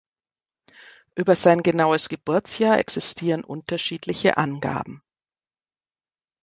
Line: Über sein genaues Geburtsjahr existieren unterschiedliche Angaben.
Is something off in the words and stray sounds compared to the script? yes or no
no